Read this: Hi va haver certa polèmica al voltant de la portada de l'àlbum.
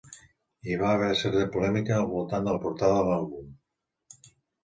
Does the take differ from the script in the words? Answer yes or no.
no